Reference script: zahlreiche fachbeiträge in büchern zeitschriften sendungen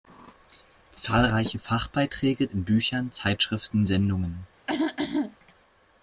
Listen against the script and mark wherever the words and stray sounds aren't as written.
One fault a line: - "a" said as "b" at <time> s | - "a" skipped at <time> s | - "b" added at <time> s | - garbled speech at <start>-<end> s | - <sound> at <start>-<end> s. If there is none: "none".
- throat clearing at 4.7-5.4 s